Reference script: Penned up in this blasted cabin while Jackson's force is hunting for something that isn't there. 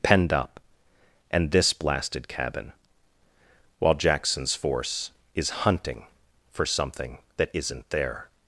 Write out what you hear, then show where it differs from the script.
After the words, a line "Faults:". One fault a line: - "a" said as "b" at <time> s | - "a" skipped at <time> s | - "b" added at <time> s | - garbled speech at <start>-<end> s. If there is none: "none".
Penned up and this blasted cabin while Jackson's force is hunting for something that isn't there.
Faults:
- "in" said as "and" at 1.3 s